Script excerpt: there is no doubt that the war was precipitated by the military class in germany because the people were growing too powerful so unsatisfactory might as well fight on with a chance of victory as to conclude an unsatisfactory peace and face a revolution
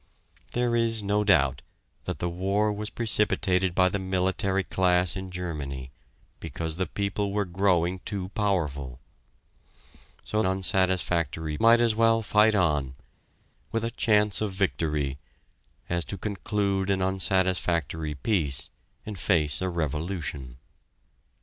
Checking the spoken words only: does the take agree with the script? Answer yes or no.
yes